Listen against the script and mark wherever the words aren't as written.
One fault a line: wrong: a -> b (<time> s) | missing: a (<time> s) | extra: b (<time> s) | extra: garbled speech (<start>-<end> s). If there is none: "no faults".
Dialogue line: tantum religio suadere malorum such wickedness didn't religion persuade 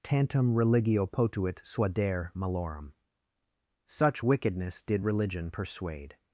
extra: potuit (1.1 s)
wrong: didn't -> did (4.8 s)